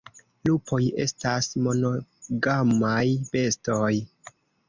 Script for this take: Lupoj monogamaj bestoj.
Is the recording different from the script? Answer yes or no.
yes